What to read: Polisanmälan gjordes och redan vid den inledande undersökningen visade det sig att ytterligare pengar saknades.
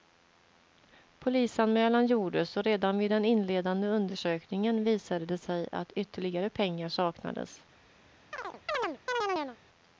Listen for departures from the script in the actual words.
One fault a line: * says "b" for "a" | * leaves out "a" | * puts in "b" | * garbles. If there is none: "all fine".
all fine